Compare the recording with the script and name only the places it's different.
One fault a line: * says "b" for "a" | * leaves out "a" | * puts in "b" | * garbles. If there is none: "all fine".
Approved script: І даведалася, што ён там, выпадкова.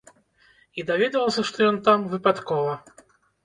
all fine